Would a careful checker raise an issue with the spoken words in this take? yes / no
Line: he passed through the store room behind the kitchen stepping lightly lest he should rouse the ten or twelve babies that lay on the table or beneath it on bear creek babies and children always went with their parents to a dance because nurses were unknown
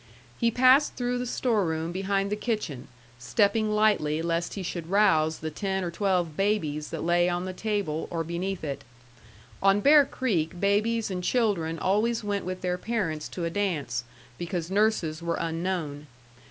no